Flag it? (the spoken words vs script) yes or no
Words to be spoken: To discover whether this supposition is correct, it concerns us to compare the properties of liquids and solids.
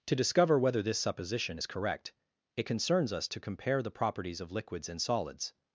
no